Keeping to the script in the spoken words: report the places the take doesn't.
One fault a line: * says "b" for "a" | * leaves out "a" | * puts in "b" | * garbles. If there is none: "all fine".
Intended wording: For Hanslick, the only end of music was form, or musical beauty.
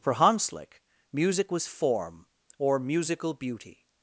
* leaves out "the only end of"